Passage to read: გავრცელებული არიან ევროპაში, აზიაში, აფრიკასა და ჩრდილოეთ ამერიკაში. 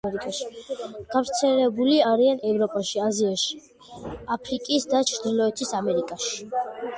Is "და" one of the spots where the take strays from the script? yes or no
no